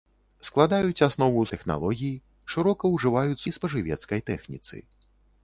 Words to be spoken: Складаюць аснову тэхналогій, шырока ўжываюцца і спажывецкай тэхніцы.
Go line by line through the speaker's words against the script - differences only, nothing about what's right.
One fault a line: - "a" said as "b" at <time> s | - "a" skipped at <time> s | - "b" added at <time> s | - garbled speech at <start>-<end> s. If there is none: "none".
none